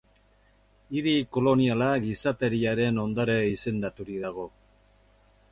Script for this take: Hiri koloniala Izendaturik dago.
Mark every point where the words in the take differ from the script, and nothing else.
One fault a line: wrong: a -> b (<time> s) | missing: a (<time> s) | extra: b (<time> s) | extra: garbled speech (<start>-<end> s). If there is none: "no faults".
extra: Gizateriaren ondare (2.1 s)